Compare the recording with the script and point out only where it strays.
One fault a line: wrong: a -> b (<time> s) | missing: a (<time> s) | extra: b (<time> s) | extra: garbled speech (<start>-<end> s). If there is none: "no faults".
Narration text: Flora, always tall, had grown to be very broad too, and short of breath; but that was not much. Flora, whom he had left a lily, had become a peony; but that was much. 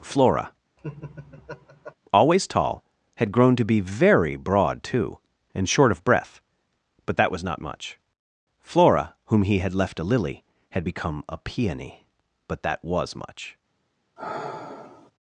no faults